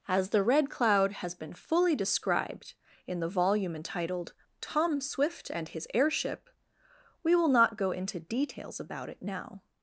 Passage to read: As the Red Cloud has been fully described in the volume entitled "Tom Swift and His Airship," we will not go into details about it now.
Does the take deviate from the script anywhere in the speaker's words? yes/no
no